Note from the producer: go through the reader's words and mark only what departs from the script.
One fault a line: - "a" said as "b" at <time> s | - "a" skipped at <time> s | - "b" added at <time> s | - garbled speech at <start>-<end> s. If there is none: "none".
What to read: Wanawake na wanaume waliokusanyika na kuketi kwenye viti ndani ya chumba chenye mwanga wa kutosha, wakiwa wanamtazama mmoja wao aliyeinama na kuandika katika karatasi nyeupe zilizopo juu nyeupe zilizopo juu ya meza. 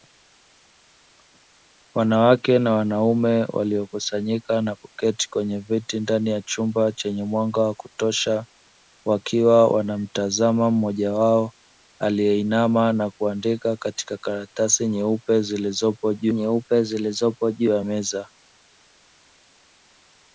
none